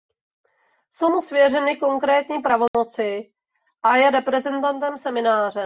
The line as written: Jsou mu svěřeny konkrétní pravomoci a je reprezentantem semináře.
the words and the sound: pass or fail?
fail